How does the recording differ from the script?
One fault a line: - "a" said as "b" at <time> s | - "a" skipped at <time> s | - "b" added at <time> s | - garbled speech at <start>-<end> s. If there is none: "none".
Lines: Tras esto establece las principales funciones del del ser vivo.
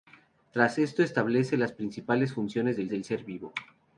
none